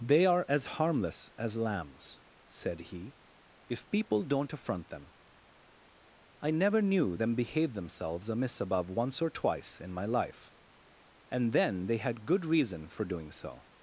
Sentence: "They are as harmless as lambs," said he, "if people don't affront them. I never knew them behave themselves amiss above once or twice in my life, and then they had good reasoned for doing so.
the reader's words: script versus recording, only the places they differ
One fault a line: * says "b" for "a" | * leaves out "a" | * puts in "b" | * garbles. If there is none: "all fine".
* says "reason" for "reasoned"